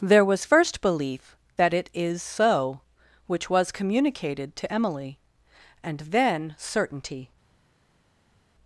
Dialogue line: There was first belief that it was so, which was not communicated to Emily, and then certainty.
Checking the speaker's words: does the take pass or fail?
fail